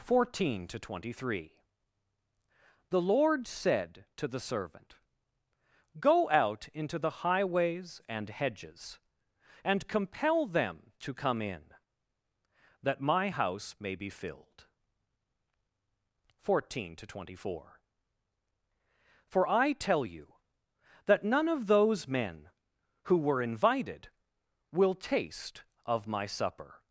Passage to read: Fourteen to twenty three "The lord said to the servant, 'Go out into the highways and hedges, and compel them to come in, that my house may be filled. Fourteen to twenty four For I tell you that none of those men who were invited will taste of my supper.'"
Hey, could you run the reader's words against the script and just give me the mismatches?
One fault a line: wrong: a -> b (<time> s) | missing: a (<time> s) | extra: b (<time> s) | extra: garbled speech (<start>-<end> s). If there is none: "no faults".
no faults